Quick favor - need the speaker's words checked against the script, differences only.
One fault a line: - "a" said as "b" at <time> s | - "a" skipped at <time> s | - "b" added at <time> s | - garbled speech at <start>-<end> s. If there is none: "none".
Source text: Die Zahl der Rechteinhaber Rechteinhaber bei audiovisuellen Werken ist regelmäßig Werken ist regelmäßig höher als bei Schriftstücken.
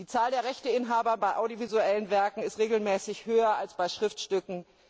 - "Rechteinhaber" skipped at 1.1 s
- "Werken ist regelmäßig" skipped at 3.3 s